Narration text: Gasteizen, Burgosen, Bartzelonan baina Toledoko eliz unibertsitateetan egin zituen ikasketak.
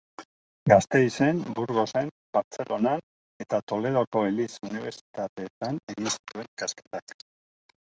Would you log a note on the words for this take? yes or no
yes